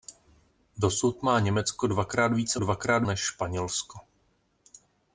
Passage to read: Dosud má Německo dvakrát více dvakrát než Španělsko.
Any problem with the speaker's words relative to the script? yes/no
no